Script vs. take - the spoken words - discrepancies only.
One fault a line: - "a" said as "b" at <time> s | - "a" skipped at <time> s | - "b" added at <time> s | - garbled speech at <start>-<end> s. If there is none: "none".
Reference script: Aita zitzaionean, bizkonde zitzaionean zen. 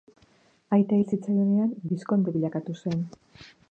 - "hil" added at 1.0 s
- "zitzaionean" said as "bilakatu" at 2.3 s